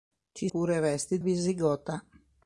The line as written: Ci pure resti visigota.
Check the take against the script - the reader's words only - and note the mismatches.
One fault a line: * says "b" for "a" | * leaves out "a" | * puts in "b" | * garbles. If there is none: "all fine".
all fine